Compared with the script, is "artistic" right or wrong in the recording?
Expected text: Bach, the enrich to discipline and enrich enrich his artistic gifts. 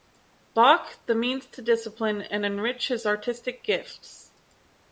right